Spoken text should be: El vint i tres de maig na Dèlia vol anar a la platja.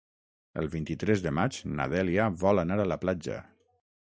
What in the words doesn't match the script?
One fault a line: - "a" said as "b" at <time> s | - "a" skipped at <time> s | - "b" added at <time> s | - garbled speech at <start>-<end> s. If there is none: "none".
none